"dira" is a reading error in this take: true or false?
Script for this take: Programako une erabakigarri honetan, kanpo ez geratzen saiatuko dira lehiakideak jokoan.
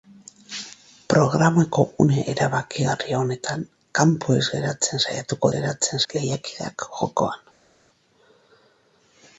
true